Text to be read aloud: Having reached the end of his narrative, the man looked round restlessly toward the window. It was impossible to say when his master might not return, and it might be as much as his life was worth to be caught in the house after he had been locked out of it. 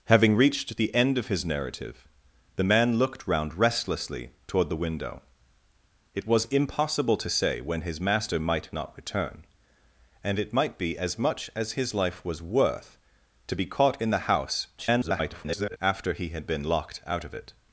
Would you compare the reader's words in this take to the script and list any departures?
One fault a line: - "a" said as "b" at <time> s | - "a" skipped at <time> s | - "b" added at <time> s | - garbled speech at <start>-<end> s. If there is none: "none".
- garbled speech at 14.8-15.8 s